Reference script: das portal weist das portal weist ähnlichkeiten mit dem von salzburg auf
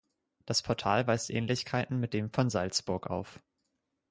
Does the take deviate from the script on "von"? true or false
false